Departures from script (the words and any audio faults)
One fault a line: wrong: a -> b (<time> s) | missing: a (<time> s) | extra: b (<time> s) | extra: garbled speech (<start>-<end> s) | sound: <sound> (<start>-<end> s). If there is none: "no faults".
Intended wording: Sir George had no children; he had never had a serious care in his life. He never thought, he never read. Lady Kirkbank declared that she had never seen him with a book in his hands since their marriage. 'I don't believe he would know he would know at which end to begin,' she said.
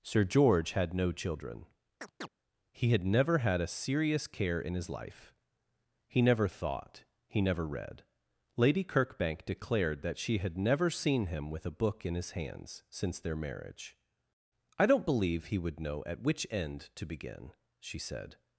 sound: chirp (2.0-2.3 s)
missing: he would know (16.0 s)